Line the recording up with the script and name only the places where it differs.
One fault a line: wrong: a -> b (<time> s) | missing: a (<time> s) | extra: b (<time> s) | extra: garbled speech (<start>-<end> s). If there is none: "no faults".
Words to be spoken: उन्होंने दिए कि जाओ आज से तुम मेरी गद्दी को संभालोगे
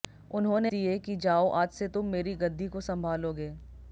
no faults